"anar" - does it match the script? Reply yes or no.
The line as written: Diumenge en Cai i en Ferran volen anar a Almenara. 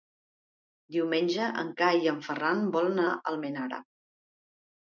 no